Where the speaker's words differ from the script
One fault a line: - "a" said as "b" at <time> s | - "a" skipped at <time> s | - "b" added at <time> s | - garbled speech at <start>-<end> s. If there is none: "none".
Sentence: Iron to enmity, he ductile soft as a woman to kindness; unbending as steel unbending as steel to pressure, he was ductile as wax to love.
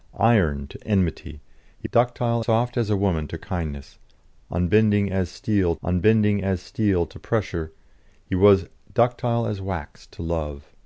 none